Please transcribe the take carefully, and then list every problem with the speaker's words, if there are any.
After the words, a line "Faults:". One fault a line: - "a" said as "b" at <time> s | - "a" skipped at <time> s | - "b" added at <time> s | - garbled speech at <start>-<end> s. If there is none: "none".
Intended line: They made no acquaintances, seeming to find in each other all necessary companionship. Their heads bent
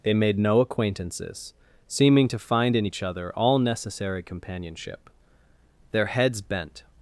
They made no acquaintances, seeming to find in each other all necessary companionship. Their heads bent
Faults:
none